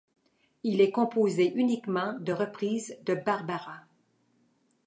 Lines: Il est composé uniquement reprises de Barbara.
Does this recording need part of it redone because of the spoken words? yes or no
yes